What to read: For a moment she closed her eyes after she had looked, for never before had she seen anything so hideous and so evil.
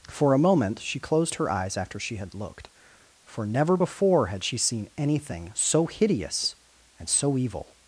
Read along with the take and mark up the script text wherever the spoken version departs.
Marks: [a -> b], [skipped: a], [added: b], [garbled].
For a moment she closed her eyes after she had looked, for never before had she seen anything so hideous and so evil.